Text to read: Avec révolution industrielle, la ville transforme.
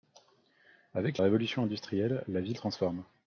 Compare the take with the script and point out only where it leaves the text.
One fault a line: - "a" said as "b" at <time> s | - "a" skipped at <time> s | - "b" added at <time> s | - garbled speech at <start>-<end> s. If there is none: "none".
none